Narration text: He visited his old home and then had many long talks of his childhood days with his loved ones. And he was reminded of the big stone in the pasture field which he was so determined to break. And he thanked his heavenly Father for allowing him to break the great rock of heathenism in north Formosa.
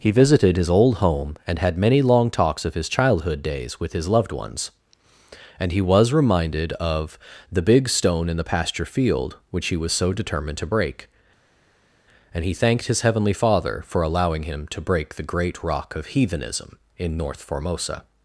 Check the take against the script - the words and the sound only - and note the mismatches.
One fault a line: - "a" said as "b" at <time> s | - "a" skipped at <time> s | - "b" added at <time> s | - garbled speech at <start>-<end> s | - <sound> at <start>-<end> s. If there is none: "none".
- "then" skipped at 1.6 s